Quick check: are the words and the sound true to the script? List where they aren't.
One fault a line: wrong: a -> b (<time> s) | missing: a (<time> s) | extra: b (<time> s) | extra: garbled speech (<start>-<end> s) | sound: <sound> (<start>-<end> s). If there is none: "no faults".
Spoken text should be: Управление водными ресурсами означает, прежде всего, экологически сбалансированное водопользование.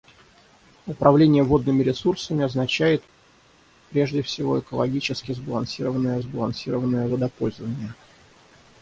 extra: сбалансированное (6.2 s)